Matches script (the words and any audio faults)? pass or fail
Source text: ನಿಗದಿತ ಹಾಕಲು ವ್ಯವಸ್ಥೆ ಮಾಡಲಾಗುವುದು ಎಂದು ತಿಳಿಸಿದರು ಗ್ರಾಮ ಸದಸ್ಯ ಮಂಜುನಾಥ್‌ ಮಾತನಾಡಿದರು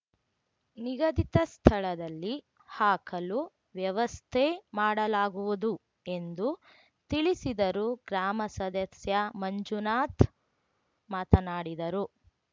fail